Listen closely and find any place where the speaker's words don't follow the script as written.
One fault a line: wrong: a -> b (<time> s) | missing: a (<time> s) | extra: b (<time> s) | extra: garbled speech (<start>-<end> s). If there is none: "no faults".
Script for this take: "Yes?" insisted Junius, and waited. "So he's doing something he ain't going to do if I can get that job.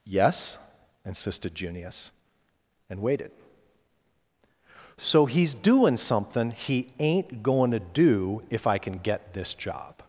wrong: that -> this (9.3 s)